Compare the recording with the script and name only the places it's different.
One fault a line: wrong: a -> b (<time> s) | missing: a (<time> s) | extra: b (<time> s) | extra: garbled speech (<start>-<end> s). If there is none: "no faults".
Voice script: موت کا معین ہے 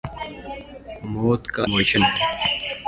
no faults